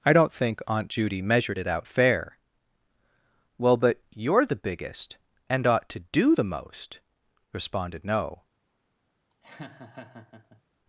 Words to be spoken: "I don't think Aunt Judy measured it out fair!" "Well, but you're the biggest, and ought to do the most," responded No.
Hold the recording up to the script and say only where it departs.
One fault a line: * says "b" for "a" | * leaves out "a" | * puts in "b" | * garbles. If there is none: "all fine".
all fine